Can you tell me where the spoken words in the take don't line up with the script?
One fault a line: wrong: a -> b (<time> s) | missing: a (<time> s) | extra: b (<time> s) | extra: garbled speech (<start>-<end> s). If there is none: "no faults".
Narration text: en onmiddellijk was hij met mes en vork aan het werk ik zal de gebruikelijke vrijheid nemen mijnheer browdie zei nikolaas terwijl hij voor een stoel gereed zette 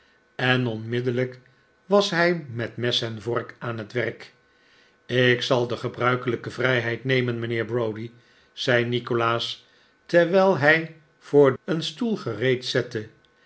no faults